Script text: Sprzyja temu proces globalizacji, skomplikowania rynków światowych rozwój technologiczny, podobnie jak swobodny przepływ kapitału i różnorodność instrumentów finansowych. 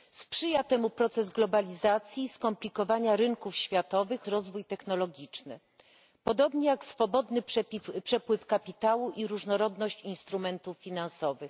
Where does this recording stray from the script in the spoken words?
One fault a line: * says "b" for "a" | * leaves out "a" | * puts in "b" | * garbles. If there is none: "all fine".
all fine